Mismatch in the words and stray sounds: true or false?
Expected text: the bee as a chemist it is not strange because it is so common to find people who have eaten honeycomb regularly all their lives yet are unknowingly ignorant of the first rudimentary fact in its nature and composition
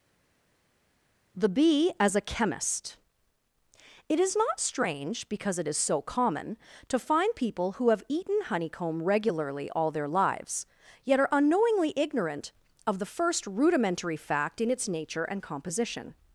false